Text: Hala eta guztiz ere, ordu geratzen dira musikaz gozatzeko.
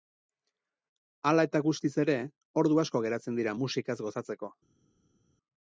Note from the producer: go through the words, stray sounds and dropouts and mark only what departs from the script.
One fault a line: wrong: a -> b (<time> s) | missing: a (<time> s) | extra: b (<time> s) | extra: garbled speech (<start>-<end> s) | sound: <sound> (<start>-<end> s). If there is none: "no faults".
extra: asko (2.9 s)